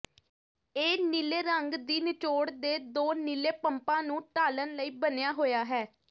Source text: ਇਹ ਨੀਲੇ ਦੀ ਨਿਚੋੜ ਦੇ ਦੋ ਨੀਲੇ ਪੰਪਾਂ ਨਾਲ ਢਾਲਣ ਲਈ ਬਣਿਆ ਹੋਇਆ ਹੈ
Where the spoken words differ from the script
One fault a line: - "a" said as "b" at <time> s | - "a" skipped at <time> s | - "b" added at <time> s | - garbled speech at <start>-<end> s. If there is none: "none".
- "ਰੰਗ" added at 1.4 s
- "ਨਾਲ" said as "ਨੂੰ" at 4.0 s